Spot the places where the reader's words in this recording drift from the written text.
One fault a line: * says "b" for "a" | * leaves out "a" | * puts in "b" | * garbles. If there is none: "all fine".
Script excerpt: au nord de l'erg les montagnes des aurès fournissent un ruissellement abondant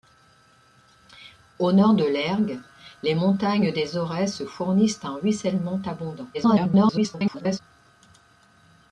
* garbles